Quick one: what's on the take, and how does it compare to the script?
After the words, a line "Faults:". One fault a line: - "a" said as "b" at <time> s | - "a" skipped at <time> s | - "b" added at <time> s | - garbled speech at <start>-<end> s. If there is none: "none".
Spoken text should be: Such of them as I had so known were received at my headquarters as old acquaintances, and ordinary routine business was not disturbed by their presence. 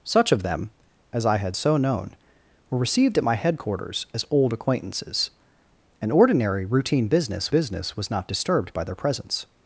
Such of them as I had so known were received at my headquarters as old acquaintances, and ordinary routine business business was not disturbed by their presence.
Faults:
- "business" added at 7.5 s